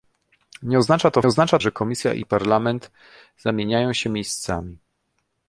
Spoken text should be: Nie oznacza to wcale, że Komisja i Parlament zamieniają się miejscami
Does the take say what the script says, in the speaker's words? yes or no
no